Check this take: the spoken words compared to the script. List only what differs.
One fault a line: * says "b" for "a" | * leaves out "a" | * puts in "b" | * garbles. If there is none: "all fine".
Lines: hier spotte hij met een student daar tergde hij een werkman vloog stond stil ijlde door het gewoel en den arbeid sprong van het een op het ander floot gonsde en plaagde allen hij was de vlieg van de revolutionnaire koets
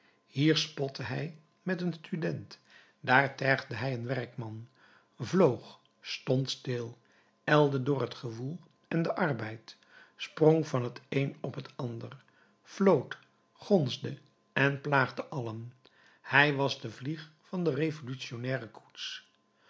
all fine